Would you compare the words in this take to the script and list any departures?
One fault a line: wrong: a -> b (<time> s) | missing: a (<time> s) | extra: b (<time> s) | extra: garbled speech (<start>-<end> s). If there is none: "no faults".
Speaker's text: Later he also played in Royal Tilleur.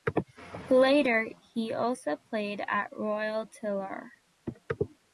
wrong: in -> at (2.6 s)